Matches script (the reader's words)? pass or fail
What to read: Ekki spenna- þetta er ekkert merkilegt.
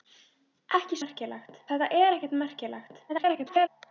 fail